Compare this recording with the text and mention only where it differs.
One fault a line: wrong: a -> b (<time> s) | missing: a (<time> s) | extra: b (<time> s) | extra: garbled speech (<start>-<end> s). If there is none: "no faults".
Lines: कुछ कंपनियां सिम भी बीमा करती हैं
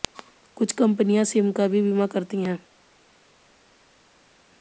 extra: का (1.5 s)